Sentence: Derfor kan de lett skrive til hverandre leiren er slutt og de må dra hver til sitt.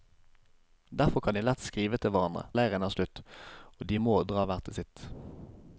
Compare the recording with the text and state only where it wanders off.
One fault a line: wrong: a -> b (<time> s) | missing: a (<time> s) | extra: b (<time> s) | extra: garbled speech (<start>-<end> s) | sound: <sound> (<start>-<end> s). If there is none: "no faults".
no faults